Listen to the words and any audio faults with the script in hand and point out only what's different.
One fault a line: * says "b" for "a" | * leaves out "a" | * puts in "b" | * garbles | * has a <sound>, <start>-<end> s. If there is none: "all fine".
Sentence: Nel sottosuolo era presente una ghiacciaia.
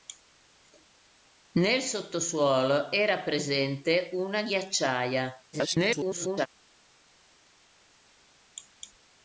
* garbles